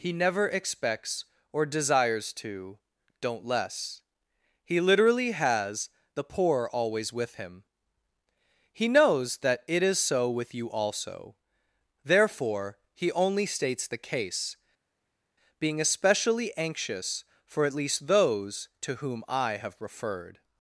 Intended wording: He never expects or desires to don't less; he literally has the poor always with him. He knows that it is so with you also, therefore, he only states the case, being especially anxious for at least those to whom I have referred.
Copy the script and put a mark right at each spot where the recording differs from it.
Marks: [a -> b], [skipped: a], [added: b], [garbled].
He never expects or desires to don't less; he literally has the poor always with him. He knows that it is so with you also, therefore, he only states the case, being especially anxious for at least those to whom I have referred.